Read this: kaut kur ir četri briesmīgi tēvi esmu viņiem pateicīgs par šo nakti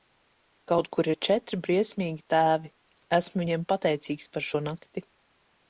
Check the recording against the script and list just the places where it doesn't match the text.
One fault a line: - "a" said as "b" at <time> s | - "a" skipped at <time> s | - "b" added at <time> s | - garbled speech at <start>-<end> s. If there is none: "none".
none